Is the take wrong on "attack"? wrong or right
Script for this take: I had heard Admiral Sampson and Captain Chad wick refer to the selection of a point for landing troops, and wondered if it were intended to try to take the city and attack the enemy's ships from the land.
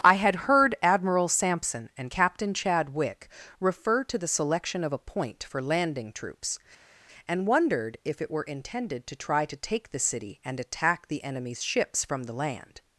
right